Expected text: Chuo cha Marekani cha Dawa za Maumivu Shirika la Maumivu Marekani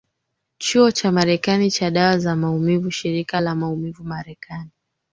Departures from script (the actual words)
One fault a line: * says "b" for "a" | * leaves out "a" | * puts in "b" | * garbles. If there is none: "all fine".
all fine